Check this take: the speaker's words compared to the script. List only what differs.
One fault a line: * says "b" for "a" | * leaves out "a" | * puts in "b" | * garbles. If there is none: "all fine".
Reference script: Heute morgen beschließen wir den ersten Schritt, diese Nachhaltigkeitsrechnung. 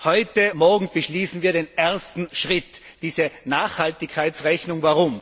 all fine